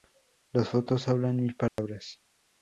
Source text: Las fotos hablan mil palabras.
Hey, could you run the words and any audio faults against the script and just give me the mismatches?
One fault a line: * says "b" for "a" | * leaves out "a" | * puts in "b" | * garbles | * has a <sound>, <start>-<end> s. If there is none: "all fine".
* has a dropout, 1.7-1.8 s